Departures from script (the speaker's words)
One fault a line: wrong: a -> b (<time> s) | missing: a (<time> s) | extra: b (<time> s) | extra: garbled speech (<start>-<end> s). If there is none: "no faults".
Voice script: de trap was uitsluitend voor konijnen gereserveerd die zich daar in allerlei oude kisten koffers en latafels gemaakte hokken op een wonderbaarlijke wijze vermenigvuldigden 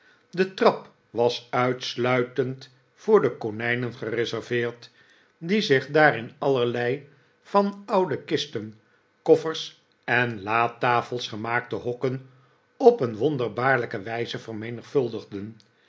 extra: de (3.2 s)
extra: van (7.4 s)